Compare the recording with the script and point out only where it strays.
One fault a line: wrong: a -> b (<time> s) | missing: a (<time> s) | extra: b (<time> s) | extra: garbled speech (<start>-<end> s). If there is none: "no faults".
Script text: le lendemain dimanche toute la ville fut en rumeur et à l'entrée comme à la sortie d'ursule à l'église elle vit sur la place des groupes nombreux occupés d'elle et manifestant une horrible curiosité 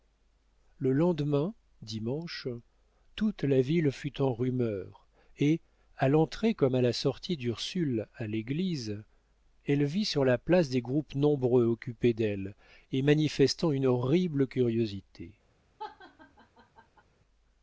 no faults